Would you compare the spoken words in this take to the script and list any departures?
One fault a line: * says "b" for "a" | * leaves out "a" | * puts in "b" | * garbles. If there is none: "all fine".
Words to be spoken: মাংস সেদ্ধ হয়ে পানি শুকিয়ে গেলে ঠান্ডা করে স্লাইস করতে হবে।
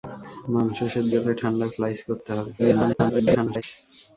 * leaves out "হয়ে পানি শুকিয়ে"
* leaves out "করে"
* garbles